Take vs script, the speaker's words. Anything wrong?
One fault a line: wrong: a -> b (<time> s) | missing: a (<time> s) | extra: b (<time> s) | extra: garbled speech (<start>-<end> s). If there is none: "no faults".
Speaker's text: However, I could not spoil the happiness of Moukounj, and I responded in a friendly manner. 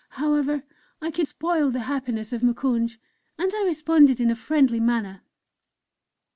missing: not (1.3 s)